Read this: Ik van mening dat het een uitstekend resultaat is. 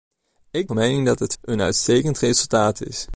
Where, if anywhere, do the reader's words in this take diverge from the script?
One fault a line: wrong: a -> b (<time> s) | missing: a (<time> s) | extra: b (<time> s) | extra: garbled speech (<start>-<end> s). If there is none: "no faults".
no faults